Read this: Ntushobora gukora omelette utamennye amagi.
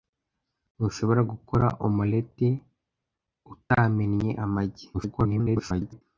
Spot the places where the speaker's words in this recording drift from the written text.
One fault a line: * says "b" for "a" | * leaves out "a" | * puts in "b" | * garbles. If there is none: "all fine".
* garbles